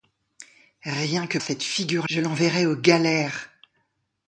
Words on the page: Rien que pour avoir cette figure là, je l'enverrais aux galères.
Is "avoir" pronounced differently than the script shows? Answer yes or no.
yes